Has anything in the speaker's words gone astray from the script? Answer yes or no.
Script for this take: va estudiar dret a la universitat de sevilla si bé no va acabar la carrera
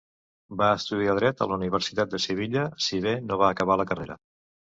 no